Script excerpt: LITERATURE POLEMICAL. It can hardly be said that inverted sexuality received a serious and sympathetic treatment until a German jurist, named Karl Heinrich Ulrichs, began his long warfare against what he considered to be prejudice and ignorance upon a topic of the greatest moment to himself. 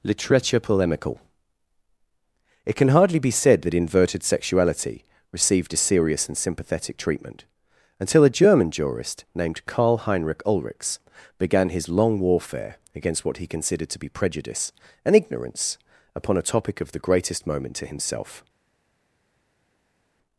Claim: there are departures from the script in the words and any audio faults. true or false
false